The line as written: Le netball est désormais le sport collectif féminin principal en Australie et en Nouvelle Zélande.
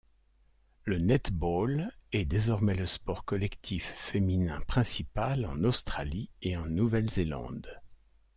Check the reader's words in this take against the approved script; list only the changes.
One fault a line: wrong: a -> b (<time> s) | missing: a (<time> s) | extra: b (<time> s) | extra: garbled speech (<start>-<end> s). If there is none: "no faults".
no faults